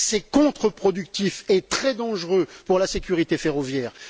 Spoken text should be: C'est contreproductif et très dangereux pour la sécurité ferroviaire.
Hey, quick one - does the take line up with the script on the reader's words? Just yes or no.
yes